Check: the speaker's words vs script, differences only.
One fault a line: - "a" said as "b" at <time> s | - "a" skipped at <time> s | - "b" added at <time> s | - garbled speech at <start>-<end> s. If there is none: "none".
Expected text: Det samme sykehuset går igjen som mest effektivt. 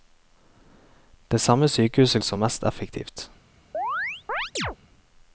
- "går igjen" skipped at 2.2 s